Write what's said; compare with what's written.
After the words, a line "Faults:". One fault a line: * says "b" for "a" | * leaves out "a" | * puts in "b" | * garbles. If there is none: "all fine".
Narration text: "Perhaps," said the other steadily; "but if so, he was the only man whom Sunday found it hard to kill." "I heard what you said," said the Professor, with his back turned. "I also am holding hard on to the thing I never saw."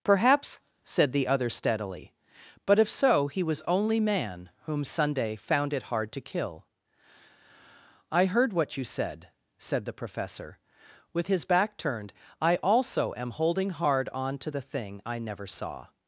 "Perhaps," said the other steadily; "but if so, he was only man whom Sunday found it hard to kill." "I heard what you said," said the Professor, with his back turned. "I also am holding hard on to the thing I never saw."
Faults:
* leaves out "the"